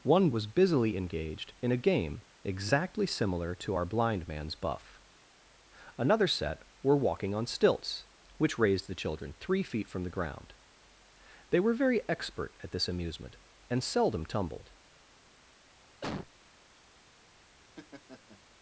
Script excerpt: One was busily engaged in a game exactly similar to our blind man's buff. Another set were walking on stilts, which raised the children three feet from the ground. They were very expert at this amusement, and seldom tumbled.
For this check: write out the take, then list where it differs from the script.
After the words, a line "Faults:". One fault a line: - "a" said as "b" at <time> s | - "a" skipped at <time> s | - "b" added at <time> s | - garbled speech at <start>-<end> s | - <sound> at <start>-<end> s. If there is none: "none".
One was busily engaged in a game exactly similar to our blind man's buff. Another set were walking on stilts, which raised the children three feet from the ground. They were very expert at this amusement, and seldom tumbled.
Faults:
- cough at 16.0-16.3 s
- laugh at 17.6-18.4 s